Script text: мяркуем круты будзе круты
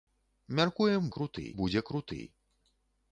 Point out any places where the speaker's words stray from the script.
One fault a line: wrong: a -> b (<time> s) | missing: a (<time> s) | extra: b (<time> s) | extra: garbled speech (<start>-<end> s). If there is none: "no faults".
no faults